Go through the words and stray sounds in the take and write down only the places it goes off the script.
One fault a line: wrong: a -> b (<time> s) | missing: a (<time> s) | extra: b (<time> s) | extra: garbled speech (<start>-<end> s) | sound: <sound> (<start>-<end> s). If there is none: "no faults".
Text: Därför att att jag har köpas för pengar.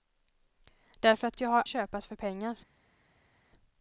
no faults